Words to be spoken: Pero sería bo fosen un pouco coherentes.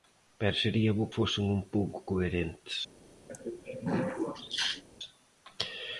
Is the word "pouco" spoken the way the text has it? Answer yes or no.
yes